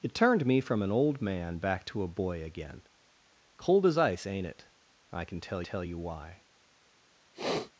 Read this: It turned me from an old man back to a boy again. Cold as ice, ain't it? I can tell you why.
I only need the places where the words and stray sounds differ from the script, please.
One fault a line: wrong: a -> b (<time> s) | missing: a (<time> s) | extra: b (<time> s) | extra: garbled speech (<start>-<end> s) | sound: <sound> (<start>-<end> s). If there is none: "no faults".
extra: tell (5.6 s)
sound: sniff (7.3-7.7 s)